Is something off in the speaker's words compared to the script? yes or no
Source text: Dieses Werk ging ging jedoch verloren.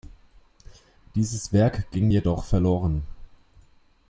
yes